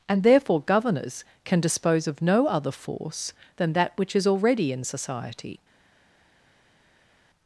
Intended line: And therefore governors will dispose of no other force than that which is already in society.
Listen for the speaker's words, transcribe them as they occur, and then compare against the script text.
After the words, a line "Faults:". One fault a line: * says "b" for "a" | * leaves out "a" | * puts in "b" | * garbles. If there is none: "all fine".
And therefore governors can dispose of no other force than that which is already in society.
Faults:
* says "can" for "will"